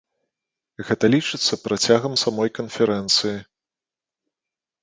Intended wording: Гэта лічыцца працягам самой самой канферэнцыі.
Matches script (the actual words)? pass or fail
fail